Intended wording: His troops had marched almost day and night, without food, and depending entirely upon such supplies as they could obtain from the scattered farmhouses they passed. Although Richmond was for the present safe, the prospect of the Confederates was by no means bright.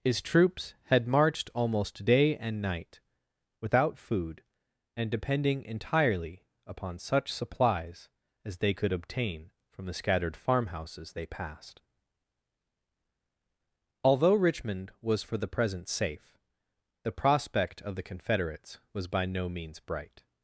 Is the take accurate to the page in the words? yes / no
yes